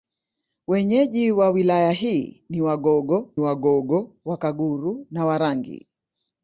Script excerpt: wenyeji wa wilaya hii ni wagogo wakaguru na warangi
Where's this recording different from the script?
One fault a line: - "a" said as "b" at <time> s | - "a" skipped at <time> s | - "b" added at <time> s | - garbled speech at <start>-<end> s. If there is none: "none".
- "wagogo" added at 3.4 s